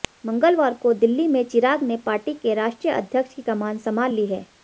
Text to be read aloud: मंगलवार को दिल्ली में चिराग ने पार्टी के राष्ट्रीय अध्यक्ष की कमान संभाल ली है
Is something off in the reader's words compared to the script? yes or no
no